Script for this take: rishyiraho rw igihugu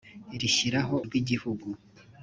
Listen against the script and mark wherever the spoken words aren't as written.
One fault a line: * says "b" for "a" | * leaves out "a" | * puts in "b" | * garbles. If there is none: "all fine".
all fine